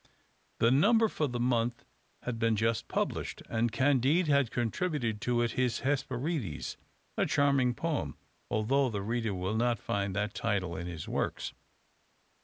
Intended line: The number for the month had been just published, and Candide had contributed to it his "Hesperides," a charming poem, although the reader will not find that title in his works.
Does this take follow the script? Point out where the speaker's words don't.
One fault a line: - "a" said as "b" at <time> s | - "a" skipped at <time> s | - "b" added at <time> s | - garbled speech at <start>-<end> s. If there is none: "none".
none